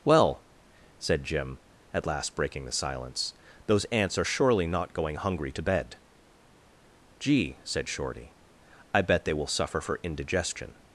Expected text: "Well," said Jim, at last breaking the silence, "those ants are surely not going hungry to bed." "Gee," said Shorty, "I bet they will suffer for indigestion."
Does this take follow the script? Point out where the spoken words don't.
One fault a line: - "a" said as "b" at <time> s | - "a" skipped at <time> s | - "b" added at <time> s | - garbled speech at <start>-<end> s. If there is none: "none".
none